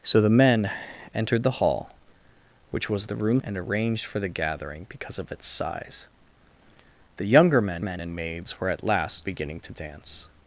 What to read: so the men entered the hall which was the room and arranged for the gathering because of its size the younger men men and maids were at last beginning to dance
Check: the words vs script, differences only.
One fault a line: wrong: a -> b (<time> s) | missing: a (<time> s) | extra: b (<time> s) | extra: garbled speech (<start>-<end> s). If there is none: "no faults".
no faults